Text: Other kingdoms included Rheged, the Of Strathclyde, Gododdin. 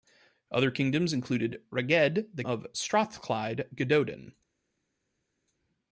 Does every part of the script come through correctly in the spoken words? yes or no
yes